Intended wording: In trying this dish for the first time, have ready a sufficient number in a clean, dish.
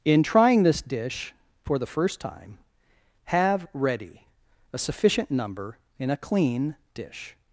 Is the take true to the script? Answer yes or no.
yes